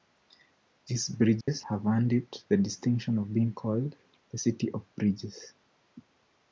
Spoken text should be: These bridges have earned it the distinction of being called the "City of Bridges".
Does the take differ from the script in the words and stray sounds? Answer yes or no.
yes